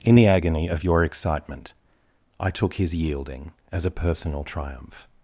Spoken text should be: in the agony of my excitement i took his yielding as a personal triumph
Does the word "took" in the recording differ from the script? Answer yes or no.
no